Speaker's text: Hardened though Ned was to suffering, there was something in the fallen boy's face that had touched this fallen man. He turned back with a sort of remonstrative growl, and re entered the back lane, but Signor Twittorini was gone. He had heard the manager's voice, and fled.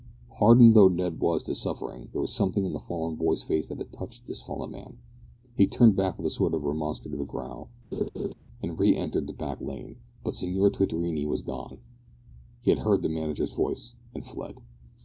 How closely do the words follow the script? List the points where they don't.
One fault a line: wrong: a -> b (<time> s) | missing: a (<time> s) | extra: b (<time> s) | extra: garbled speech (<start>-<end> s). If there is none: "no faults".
no faults